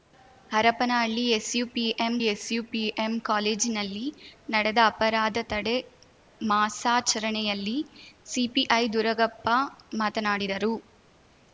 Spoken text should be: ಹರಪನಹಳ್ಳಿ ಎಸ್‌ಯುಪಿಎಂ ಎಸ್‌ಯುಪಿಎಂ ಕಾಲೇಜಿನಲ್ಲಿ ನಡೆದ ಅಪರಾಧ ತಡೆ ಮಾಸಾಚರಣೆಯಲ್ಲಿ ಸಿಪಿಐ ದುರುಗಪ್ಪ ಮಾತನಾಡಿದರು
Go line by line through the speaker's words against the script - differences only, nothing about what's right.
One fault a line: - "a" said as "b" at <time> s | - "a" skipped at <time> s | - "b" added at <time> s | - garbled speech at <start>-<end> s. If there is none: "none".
none